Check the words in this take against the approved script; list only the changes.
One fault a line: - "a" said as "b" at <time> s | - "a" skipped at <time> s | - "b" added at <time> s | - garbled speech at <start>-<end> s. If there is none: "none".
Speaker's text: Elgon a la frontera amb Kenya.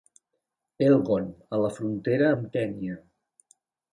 none